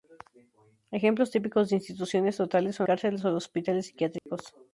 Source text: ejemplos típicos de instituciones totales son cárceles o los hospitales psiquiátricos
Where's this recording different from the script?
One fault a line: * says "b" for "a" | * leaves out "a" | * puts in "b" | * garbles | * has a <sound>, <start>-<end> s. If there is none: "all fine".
* has a dropout, 4.2-4.3 s